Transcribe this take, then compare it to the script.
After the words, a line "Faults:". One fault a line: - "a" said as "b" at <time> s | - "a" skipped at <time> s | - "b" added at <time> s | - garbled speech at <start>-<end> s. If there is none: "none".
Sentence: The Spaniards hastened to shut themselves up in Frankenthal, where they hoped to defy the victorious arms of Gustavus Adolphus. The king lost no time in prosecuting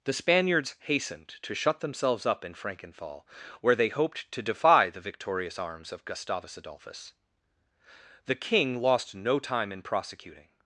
The Spaniards hastened to shut themselves up in Frankenthal, where they hoped to defy the victorious arms of Gustavus Adolphus. The king lost no time in prosecuting
Faults:
none